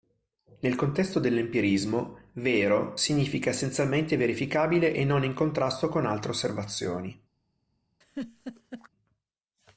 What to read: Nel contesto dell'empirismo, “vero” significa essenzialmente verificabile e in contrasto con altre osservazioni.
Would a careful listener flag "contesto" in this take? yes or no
no